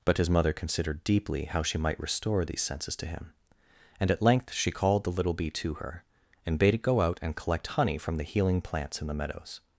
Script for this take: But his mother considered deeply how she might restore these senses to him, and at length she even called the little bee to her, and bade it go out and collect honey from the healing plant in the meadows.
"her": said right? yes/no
yes